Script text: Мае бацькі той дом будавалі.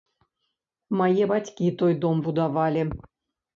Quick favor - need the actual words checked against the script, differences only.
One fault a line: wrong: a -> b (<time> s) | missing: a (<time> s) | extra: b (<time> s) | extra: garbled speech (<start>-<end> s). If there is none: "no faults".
no faults